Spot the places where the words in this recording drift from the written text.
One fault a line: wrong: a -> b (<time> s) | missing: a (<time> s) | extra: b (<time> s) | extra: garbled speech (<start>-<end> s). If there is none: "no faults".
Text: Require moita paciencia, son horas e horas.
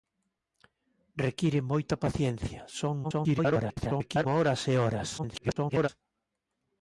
extra: garbled speech (3.0-4.3 s)
extra: garbled speech (5.2-5.9 s)